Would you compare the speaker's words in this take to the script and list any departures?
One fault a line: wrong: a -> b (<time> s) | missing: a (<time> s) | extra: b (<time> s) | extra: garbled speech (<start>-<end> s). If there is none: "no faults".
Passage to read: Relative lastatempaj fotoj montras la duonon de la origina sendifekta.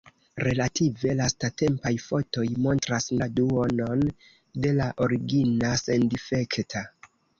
no faults